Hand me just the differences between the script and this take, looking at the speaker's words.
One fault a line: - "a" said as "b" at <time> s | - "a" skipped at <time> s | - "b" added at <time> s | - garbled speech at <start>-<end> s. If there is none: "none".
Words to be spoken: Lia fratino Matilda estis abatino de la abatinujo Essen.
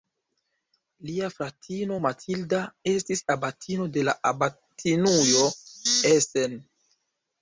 none